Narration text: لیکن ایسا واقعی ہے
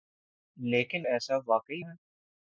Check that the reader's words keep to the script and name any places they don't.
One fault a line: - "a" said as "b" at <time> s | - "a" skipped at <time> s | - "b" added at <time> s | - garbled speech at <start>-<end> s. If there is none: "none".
none